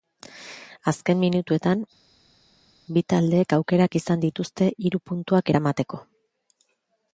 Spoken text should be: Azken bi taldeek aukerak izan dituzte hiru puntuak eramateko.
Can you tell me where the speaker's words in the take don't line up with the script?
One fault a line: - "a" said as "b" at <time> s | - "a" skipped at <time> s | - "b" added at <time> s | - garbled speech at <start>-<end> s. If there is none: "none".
- "minutuetan" added at 1.2 s